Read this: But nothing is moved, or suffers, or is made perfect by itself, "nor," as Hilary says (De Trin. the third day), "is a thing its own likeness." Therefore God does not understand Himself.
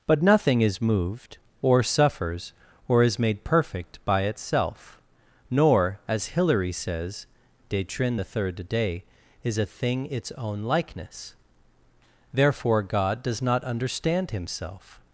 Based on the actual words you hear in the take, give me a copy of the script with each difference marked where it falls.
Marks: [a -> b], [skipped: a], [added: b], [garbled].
But nothing is moved, or suffers, or is made perfect by itself, "nor," as Hilary says (De Trin. the third day), "is a thing its own likeness." Therefore God does not understand Himself.